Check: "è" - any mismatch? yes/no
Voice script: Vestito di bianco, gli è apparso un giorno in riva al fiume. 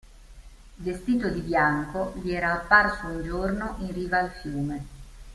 yes